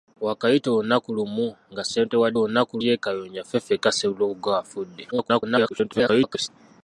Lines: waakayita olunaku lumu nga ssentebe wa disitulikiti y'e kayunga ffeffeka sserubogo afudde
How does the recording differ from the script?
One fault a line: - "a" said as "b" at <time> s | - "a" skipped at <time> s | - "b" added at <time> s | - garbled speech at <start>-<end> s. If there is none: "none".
- "disitulikiti" said as "olunaku" at 2.4 s
- garbled speech at 5.1-6.5 s